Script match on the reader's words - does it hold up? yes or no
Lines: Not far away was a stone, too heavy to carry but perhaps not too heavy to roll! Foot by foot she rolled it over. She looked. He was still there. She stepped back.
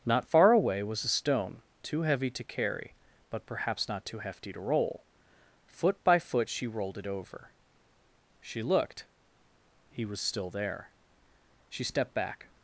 no